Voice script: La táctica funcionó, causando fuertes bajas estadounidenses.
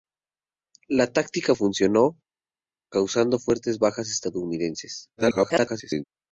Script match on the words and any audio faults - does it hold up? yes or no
no